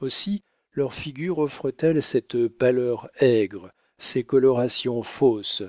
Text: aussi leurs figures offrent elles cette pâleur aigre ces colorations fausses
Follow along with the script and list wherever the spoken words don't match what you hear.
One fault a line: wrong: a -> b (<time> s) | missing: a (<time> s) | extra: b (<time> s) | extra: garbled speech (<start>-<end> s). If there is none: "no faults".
no faults